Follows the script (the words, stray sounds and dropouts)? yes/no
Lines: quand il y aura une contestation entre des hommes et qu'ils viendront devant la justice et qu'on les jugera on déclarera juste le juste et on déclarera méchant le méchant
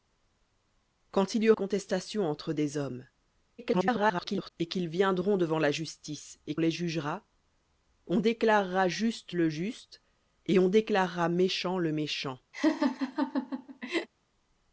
no